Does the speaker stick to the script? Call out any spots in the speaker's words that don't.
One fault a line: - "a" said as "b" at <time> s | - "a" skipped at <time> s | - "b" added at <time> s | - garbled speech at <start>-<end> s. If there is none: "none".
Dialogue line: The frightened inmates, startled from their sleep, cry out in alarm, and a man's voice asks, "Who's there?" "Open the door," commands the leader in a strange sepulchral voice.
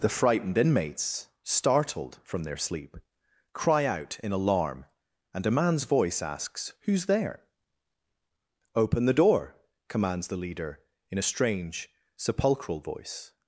none